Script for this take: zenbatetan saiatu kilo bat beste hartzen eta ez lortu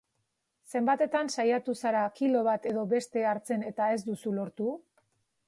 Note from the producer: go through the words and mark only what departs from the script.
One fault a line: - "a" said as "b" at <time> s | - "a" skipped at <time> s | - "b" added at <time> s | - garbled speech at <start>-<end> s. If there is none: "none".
- "zara" added at 1.8 s
- "edo" added at 2.7 s
- "duzu" added at 4.1 s